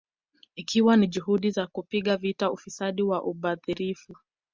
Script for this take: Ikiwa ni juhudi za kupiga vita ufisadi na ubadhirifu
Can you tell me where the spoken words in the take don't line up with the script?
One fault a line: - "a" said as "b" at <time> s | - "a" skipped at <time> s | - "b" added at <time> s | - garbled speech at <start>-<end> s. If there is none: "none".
none